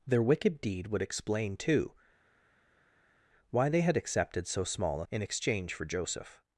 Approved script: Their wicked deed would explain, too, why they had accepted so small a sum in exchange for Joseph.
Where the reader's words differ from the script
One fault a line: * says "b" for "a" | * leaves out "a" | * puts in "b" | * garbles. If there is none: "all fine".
* leaves out "sum"